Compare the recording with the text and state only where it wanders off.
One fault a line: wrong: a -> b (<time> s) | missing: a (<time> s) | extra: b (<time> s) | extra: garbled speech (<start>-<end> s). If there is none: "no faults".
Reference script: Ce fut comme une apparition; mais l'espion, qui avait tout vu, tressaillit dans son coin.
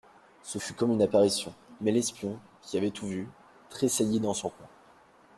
no faults